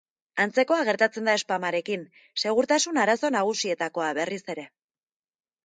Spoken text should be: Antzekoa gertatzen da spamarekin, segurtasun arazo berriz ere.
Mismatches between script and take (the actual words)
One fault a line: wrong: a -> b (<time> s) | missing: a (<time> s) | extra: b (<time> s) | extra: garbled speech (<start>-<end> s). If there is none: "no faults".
extra: nagusietakoa (3.4 s)